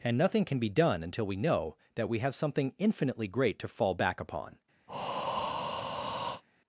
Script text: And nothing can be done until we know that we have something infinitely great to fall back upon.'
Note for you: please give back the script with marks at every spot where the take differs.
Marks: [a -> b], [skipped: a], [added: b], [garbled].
And nothing can be done until we know that we have something infinitely great to fall back upon.'